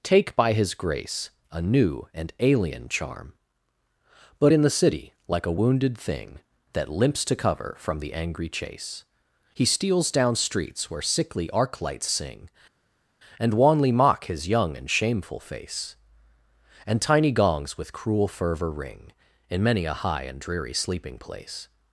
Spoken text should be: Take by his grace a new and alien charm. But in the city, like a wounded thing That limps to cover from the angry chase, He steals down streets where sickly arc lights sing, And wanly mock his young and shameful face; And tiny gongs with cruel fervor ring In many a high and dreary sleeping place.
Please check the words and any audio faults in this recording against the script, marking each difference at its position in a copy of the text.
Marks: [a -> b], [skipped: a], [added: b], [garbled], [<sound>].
Take by his grace a new and alien charm. But in the city, like a wounded thing That limps to cover from the angry chase, He steals down streets where sickly arc lights sing, And wanly mock his young and shameful face; And tiny gongs with cruel fervor ring In many a high and dreary sleeping place.